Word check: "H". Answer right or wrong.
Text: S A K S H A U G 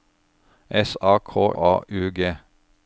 wrong